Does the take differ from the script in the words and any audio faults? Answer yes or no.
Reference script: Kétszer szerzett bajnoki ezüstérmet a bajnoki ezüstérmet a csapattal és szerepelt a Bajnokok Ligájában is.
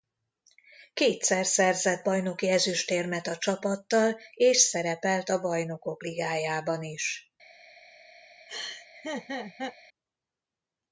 yes